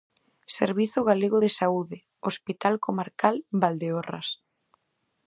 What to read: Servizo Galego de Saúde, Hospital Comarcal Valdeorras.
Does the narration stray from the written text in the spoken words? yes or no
no